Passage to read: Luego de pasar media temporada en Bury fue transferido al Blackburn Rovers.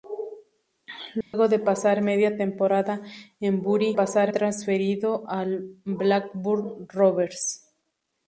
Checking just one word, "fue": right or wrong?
wrong